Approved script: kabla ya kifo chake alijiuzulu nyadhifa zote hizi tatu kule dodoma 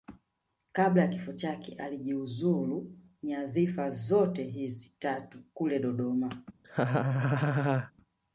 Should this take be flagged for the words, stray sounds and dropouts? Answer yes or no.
yes